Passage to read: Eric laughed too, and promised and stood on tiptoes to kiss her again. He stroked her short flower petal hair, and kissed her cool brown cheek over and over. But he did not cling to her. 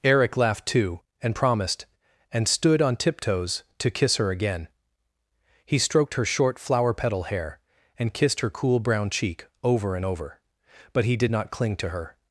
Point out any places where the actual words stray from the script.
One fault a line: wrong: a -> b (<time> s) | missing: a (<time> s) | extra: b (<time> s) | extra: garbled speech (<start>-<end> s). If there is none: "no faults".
no faults